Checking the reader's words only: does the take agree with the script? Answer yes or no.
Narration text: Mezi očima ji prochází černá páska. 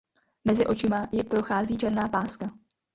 yes